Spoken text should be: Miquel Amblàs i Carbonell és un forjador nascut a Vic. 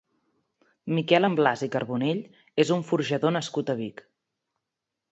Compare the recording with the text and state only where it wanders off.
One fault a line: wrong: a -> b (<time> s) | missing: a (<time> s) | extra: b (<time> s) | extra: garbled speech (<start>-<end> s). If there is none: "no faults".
no faults